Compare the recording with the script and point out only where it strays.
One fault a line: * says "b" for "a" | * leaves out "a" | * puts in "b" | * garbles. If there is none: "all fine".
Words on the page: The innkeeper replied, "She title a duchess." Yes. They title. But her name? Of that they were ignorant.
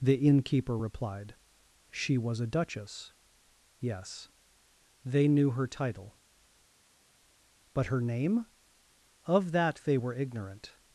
* says "was" for "title"
* puts in "knew her"